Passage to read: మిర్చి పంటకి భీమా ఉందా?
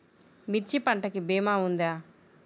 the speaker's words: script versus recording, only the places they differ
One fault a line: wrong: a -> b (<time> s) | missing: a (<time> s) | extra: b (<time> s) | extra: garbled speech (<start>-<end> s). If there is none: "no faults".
no faults